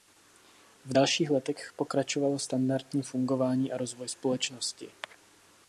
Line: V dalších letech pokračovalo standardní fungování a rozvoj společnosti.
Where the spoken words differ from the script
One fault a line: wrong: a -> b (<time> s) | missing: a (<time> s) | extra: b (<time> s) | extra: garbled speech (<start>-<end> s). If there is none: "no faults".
no faults